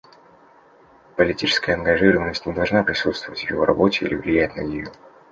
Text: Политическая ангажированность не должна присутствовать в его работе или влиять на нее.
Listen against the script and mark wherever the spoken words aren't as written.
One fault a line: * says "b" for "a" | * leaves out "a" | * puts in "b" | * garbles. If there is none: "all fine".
all fine